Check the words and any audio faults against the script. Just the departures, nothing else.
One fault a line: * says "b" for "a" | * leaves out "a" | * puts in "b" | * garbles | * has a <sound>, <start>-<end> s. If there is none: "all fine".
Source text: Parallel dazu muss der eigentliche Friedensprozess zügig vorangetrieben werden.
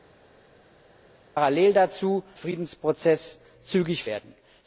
* leaves out "muss der eigentliche"
* leaves out "vorangetrieben"